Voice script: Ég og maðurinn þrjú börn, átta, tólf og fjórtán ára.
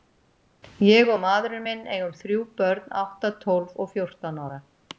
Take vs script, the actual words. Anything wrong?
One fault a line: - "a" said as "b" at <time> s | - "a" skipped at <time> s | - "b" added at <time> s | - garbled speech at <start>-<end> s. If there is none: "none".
- "minn eigum" added at 1.7 s